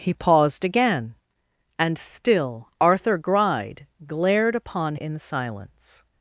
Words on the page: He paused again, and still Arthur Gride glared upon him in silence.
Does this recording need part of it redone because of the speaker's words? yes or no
yes